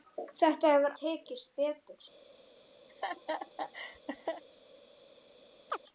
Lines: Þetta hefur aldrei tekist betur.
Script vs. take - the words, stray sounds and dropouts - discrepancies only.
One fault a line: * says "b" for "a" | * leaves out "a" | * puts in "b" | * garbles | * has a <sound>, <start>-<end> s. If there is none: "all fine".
* leaves out "aldrei"
* has a laugh, 2.9-4.4 s
* has a chirp, 5.7-5.8 s